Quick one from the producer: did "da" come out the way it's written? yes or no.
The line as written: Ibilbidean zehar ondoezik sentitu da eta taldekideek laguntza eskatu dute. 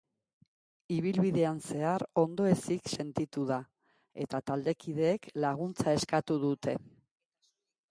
yes